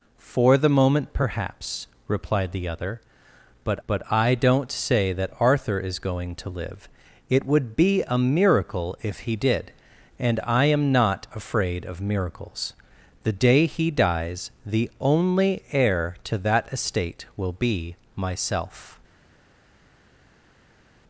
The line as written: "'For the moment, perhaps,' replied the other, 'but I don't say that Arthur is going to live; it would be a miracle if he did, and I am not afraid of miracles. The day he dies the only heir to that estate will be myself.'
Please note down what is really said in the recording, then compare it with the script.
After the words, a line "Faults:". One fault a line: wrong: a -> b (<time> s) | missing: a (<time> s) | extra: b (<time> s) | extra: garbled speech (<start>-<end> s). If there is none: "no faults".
"'For the moment, perhaps,' replied the other, 'but but I don't say that Arthur is going to live; it would be a miracle if he did, and I am not afraid of miracles. The day he dies the only heir to that estate will be myself.'
Faults:
extra: but (3.9 s)